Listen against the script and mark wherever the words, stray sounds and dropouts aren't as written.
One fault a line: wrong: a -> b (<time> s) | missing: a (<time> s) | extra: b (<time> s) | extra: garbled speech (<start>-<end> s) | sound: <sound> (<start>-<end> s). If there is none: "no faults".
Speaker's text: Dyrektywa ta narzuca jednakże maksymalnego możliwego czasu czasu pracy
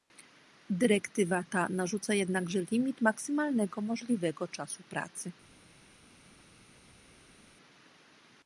extra: limit (2.7 s)
missing: czasu (4.8 s)